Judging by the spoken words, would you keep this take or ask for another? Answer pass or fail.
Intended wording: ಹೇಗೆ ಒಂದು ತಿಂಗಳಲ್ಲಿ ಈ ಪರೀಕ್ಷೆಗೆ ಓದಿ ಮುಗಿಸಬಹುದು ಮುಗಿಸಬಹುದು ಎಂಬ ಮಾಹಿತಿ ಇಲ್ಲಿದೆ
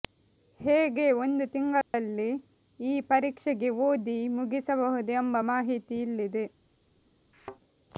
fail